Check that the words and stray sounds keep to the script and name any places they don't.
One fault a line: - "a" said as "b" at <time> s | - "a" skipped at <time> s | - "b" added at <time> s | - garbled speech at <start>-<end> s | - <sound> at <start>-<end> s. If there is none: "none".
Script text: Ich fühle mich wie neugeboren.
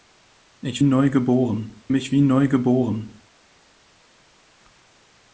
- "fühle" said as "neugeboren" at 0.8 s